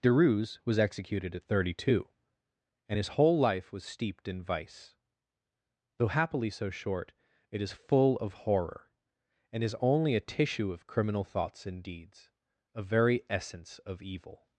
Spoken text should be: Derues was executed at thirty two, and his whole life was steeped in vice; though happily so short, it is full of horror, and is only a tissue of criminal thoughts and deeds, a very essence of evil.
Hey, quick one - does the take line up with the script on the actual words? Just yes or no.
yes